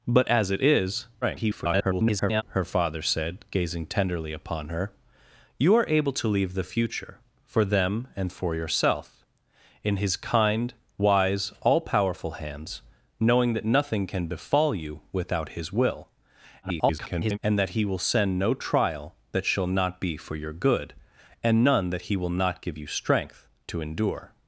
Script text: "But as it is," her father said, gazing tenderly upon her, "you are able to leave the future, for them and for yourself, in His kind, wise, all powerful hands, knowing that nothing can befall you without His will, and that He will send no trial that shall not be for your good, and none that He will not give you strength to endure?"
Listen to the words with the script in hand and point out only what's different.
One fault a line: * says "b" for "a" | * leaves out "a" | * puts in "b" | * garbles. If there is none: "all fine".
* garbles
* garbles